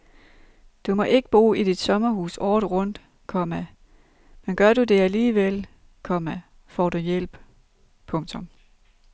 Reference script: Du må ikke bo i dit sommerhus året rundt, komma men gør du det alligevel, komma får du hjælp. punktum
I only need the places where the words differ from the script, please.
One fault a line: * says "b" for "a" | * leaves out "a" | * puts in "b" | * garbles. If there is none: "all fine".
all fine